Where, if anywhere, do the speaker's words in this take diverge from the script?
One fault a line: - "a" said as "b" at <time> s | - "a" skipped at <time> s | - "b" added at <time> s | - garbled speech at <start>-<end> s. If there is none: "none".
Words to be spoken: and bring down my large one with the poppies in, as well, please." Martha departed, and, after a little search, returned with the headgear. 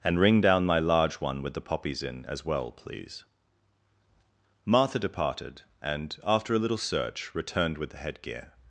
- "bring" said as "ring" at 0.2 s